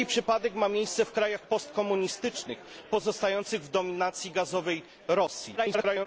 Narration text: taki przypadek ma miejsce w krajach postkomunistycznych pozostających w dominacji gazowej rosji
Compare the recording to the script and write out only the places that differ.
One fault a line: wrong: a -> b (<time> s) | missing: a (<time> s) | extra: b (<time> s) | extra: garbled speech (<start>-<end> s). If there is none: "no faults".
extra: garbled speech (5.6-6.1 s)